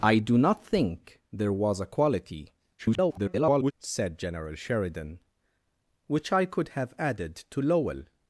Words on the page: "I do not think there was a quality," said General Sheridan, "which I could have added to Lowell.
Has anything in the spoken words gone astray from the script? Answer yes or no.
yes